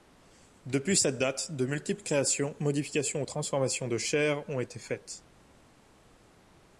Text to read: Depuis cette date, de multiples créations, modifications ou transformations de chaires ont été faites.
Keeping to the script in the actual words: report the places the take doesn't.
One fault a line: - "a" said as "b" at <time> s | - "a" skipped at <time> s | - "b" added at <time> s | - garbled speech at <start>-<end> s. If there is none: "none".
none